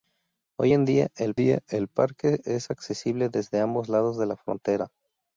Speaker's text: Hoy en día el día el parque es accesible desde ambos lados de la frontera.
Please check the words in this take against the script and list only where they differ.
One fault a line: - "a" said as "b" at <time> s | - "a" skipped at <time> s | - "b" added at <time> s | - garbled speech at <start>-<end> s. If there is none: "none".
none